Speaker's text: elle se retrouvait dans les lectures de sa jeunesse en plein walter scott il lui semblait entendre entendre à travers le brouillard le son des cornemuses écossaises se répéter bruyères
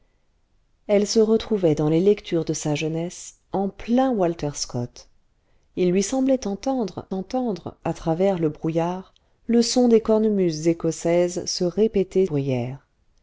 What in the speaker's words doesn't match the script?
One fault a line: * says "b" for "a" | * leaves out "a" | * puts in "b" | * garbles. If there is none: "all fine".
all fine